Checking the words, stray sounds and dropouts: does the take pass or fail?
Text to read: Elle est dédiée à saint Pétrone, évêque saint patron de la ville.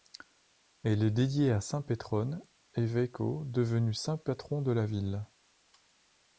fail